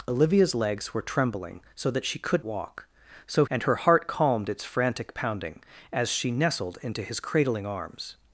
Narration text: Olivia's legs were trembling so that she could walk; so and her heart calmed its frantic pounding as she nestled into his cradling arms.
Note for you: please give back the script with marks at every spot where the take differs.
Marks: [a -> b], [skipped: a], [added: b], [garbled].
Olivia's legs were trembling so that she could walk; so and her heart calmed its frantic pounding as she nestled into his cradling arms.